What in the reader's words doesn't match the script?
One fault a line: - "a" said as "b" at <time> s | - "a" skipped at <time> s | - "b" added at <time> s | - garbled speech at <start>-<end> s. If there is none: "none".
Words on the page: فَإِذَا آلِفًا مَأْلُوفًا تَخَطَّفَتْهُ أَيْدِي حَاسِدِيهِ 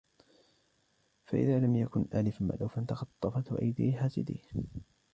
- "لَمْ يَكُنْ" added at 1.6 s